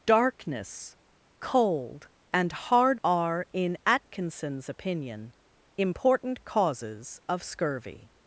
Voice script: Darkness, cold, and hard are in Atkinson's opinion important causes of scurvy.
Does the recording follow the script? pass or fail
pass